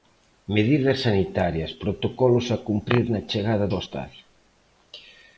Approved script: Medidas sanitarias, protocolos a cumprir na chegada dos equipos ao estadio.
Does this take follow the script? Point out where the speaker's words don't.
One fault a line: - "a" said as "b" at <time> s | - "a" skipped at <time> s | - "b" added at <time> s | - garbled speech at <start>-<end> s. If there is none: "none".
- "dos equipos" skipped at 3.6 s